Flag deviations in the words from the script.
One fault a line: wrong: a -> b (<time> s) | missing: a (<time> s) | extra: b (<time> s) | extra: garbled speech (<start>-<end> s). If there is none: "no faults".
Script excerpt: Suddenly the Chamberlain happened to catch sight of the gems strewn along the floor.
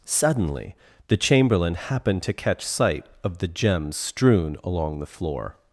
no faults